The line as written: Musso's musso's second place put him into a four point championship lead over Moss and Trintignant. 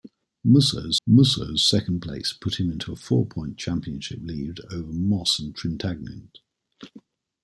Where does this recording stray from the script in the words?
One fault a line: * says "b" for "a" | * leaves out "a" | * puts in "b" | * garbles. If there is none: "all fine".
all fine